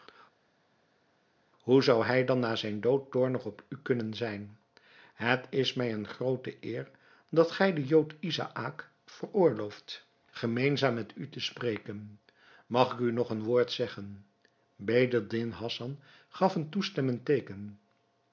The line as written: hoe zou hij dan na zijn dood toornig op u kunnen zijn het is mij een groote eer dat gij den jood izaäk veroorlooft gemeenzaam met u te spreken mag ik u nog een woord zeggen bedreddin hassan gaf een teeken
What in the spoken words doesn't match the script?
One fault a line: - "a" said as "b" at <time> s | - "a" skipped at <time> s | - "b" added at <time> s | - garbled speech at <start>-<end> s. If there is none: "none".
- "toestemmend" added at 16.7 s